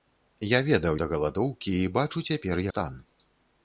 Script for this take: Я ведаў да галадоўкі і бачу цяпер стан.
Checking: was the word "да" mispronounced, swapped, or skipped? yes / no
no